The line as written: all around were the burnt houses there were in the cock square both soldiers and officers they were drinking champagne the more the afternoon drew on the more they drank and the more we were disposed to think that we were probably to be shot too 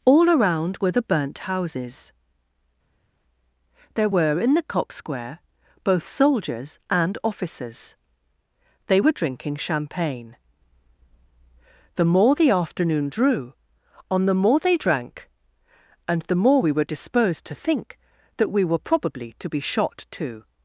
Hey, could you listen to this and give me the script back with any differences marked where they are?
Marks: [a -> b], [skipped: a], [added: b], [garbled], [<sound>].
all around were the burnt houses there were in the cock square both soldiers and officers they were drinking champagne the more the afternoon drew on the more they drank and the more we were disposed to think that we were probably to be shot too